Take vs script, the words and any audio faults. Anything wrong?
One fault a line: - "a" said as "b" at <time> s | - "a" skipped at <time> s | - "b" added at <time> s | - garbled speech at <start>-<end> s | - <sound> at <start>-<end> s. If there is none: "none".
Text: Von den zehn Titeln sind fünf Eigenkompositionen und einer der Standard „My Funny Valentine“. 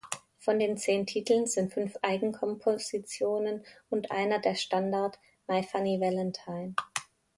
none